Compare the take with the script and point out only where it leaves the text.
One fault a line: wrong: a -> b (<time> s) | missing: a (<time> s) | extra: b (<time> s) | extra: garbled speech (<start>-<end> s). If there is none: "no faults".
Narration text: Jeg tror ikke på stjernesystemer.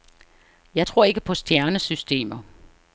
no faults